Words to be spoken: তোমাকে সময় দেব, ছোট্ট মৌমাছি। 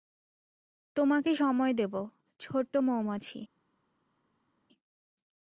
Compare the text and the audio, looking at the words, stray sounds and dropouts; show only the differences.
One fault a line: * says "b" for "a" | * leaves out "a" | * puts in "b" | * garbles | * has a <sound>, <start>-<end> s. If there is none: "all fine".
all fine